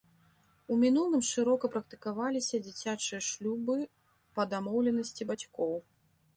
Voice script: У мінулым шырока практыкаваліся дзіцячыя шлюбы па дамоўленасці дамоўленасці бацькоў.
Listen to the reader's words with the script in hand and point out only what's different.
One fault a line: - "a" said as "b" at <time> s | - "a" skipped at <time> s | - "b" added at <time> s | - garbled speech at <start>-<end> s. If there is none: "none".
- "дамоўленасці" skipped at 5.3 s